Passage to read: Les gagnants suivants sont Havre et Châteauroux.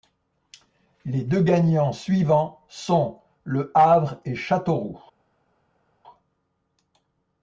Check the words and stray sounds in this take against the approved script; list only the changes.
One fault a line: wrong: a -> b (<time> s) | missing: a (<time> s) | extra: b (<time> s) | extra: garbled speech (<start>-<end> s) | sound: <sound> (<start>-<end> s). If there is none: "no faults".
extra: deux (1.2 s)
extra: Le (3.4 s)